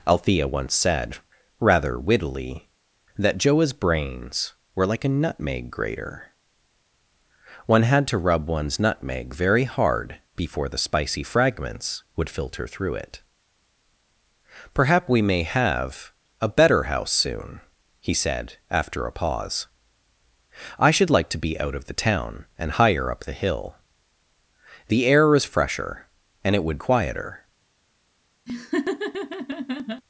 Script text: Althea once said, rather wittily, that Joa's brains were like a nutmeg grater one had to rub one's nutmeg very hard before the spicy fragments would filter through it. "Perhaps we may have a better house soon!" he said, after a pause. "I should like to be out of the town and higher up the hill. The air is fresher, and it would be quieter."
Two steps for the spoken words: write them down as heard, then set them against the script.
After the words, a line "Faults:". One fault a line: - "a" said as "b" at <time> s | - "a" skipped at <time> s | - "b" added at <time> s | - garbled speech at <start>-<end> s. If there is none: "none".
Althea once said, rather wittily, that Joa's brains were like a nutmeg grater one had to rub one's nutmeg very hard before the spicy fragments would filter through it. "Perhaps we may have a better house soon!" he said, after a pause. "I should like to be out of the town and higher up the hill. The air is fresher, and it would quieter."
Faults:
- "be" skipped at 26.8 s